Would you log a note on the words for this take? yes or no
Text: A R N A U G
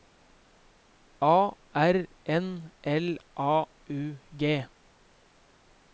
yes